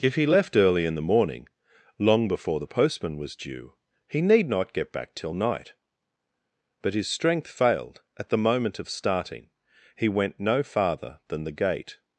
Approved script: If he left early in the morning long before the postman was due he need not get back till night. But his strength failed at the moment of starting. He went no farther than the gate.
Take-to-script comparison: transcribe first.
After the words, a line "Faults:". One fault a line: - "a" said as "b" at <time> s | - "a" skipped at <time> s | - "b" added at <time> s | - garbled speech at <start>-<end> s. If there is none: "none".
If he left early in the morning long before the postman was due he need not get back till night. But his strength failed at the moment of starting. He went no farther than the gate.
Faults:
none